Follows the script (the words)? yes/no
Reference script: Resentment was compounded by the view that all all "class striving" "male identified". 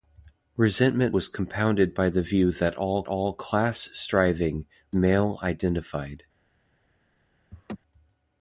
yes